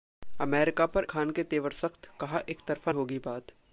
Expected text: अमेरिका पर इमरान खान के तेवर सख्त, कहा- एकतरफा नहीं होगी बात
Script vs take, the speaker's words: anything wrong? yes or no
yes